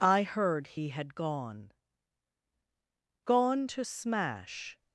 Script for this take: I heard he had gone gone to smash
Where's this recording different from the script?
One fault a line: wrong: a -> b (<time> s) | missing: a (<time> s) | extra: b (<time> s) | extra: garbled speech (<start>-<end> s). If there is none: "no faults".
no faults